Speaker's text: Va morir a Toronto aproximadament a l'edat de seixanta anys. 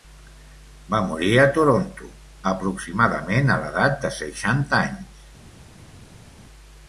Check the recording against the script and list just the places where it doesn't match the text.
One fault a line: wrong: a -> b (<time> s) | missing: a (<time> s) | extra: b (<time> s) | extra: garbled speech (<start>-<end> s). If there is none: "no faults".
no faults